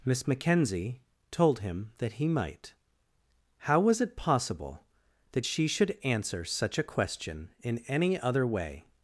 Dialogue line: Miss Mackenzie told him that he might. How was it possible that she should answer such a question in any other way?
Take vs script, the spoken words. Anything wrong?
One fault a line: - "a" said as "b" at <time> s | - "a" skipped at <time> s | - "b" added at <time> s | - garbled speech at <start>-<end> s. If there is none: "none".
none